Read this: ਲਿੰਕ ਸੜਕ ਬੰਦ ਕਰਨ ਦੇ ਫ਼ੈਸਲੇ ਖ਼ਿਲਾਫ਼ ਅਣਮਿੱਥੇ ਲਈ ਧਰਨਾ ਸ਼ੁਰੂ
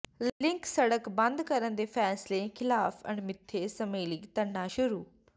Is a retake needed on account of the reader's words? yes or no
yes